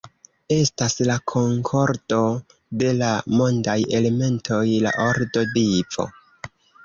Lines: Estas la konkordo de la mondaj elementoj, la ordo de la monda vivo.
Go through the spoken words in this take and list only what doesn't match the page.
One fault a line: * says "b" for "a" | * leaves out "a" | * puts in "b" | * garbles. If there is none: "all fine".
* leaves out "de la monda"